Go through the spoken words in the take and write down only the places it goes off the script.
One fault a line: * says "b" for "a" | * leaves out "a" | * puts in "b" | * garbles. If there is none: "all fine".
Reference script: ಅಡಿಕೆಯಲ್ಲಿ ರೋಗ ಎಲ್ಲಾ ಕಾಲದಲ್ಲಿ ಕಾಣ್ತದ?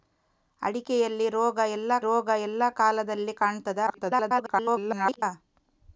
* puts in "ರೋಗ ಎಲ್ಲಾ"
* garbles